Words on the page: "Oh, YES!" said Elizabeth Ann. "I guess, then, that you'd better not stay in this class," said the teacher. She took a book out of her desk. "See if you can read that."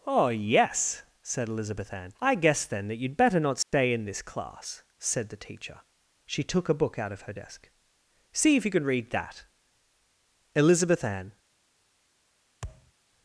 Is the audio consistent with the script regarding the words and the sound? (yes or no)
no